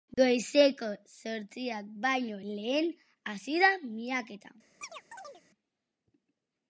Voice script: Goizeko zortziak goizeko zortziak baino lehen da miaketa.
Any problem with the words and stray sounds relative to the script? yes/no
yes